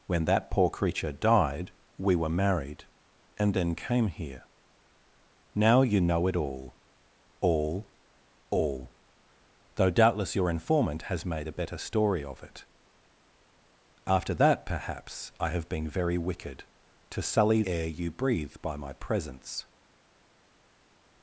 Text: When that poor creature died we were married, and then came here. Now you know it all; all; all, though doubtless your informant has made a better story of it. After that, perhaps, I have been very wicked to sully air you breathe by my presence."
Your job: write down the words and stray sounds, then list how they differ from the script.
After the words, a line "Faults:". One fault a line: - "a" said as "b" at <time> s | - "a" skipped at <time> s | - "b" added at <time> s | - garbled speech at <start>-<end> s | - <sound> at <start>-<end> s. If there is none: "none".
When that poor creature died we were married, and then came here. Now you know it all; all; all, though doubtless your informant has made a better story of it. After that, perhaps, I have been very wicked to sully air you breathe by my presence."
Faults:
none